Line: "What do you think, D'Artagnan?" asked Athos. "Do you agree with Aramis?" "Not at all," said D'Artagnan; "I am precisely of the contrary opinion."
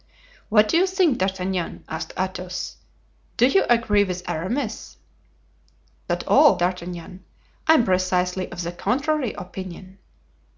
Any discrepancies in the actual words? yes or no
yes